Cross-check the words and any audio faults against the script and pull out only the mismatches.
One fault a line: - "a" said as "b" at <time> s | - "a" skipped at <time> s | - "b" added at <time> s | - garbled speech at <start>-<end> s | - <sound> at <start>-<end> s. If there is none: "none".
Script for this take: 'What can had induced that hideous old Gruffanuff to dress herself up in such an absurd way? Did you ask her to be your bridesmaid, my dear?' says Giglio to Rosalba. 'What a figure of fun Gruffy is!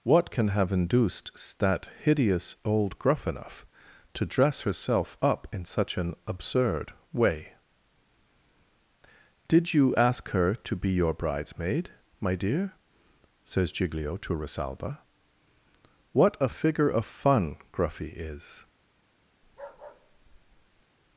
- "had" said as "have" at 0.5 s
- bark at 19.4-20.8 s